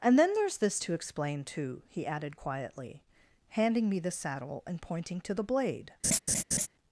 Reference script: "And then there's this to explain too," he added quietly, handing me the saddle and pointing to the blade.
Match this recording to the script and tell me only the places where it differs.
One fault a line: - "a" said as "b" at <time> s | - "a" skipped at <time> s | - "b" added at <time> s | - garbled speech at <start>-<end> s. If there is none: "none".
none